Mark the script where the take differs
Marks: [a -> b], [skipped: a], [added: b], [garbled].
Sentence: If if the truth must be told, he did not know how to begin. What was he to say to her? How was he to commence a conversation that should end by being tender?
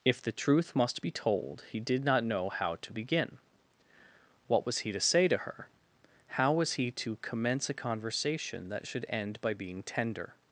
If [skipped: if] the truth must be told, he did not know how to begin. What was he to say to her? How was he to commence a conversation that should end by being tender?